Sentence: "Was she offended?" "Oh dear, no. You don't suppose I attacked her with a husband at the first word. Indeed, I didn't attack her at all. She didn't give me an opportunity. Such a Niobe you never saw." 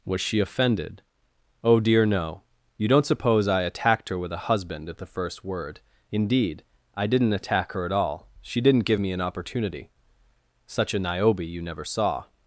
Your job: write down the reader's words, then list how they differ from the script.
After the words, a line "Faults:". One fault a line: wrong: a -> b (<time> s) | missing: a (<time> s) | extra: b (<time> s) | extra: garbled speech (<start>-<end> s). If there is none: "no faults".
"Was she offended?" "Oh dear, no. You don't suppose I attacked her with a husband at the first word. Indeed, I didn't attack her at all. She didn't give me an opportunity. Such a Niobe you never saw."
Faults:
no faults